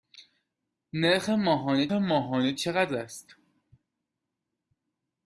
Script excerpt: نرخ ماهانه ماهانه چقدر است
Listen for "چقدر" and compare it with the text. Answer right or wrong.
right